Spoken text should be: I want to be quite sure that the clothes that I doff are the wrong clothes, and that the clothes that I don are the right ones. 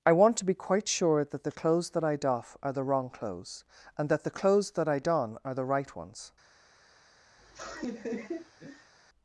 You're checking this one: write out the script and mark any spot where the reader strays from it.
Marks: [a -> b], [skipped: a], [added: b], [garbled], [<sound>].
I want to be quite sure that the clothes that I doff are the wrong clothes, and that the clothes that I don are the right ones. [laugh]